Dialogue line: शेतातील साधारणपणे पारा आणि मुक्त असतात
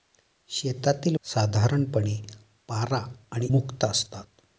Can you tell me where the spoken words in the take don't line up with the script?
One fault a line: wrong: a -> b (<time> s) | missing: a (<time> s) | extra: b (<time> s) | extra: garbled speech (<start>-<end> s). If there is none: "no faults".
no faults